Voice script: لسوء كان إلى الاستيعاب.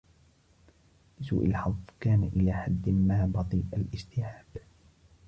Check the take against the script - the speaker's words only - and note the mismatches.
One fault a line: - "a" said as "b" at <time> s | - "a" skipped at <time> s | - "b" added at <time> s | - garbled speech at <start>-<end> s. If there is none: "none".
- "الحظ" added at 1.4 s
- "حد ما بطيء" added at 2.5 s